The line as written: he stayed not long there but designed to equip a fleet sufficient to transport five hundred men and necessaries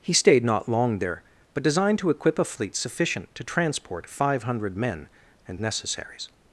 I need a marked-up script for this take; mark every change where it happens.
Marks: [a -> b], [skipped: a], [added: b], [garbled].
he stayed not long there but designed to equip a fleet sufficient to transport five hundred men and necessaries